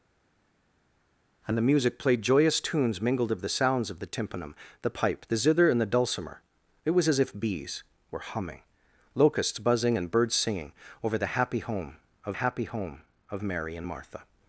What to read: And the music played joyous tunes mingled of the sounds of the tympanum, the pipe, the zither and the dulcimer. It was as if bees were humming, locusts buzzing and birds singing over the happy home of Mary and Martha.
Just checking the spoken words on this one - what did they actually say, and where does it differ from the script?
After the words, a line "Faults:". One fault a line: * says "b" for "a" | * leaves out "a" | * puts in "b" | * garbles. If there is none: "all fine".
And the music played joyous tunes mingled of the sounds of the tympanum, the pipe, the zither and the dulcimer. It was as if bees were humming, locusts buzzing and birds singing over the happy home of happy home of Mary and Martha.
Faults:
* puts in "happy home of"